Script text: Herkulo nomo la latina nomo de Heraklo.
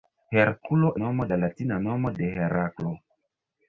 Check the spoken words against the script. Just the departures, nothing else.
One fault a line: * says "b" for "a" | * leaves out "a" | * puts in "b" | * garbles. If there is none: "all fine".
all fine